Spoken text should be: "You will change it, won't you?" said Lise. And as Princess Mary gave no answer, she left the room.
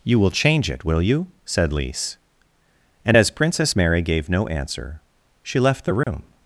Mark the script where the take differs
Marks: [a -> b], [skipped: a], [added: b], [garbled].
"You will change it, [won't -> will] you?" said Lise. And as Princess Mary gave no answer, she left the room.